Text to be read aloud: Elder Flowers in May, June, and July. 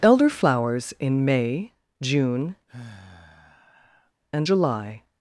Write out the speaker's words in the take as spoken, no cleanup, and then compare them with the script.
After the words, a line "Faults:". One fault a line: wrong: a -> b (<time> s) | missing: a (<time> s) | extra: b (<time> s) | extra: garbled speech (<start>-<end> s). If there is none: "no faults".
Elder Flowers in May, June, and July.
Faults:
no faults